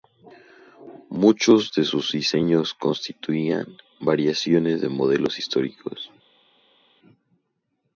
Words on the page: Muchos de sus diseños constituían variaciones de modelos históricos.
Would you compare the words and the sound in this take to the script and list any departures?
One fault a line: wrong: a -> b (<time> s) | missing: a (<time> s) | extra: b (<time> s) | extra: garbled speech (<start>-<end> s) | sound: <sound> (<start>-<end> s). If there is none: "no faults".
no faults